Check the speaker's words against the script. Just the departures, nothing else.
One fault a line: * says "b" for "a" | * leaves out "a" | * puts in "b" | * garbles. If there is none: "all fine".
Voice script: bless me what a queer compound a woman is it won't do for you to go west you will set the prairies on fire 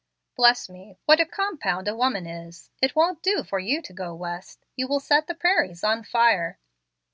* leaves out "queer"